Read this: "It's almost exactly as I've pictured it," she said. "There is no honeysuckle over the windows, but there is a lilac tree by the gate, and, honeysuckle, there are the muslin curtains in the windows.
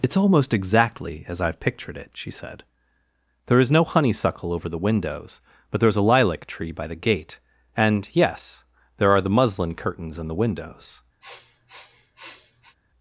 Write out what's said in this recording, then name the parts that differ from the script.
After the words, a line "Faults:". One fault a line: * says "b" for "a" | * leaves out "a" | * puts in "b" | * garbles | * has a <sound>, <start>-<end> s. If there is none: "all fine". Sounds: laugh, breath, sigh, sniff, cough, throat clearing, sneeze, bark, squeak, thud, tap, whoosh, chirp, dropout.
"It's almost exactly as I've pictured it," she said. "There is no honeysuckle over the windows, but there is a lilac tree by the gate, and, yes, there are the muslin curtains in the windows.
Faults:
* says "yes" for "honeysuckle"
* has a sniff, 11.2-12.8 s